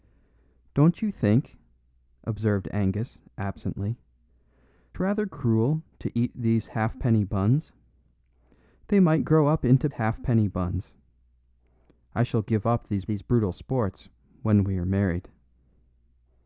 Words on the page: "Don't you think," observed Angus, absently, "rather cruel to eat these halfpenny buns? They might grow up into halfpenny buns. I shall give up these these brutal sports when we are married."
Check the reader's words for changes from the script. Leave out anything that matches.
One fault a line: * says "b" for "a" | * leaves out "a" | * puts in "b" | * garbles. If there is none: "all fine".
all fine